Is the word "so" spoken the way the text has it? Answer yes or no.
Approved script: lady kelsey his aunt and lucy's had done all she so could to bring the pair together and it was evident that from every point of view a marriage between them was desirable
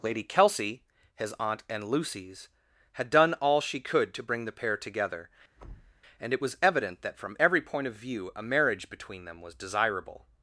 no